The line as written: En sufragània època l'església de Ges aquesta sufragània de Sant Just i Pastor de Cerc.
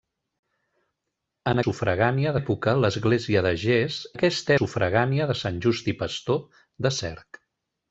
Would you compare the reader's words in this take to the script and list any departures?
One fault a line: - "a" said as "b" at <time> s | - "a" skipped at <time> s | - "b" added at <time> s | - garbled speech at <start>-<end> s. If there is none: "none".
none